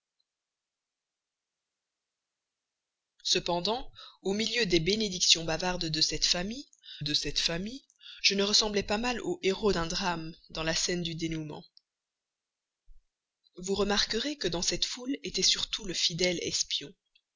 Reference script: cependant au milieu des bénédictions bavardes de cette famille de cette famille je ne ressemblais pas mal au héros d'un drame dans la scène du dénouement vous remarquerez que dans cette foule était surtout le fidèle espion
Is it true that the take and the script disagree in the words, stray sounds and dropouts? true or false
false